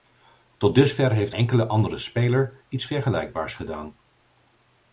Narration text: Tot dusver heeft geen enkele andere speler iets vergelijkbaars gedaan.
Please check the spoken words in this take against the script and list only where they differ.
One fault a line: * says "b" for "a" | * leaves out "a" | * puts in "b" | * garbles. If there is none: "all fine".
* leaves out "geen"